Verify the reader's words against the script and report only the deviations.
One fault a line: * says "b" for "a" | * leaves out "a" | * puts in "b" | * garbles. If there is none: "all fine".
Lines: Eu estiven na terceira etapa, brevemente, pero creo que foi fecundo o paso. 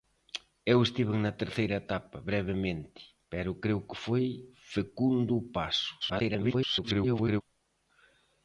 * garbles